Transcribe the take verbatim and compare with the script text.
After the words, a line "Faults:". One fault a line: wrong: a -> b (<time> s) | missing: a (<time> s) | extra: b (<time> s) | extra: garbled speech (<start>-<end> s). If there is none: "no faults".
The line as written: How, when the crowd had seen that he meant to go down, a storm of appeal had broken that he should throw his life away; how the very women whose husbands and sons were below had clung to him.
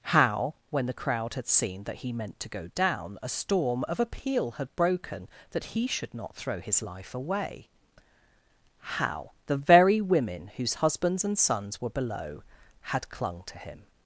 How, when the crowd had seen that he meant to go down, a storm of appeal had broken that he should not throw his life away; how the very women whose husbands and sons were below had clung to him.
Faults:
extra: not (6.1 s)